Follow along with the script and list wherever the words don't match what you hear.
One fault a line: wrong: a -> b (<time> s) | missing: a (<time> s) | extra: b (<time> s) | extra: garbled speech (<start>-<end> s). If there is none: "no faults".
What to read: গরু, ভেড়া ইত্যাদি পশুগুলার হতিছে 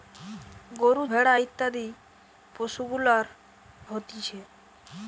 no faults